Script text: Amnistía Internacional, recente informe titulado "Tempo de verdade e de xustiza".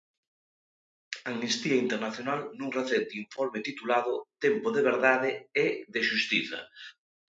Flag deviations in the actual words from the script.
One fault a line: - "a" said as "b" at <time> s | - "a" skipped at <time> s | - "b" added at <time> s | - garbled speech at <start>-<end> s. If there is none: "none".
- "nun" added at 2.6 s